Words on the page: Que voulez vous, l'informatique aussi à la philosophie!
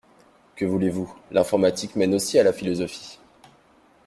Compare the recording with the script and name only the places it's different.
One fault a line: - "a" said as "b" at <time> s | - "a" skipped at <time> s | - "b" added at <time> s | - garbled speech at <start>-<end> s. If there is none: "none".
- "mène" added at 2.0 s